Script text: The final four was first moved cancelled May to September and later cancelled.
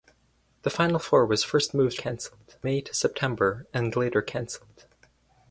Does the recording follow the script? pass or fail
pass